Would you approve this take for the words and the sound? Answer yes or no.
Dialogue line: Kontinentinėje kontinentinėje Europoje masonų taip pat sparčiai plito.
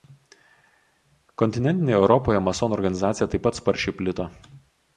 no